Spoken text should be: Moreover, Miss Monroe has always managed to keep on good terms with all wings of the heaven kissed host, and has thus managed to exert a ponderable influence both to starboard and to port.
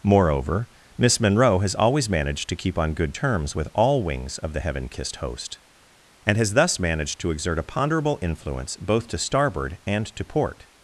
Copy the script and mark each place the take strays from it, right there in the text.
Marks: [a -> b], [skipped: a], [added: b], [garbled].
Moreover, Miss Monroe has always managed to keep on good terms with all wings of the heaven kissed host, and has thus managed to exert a ponderable influence both to starboard and to port.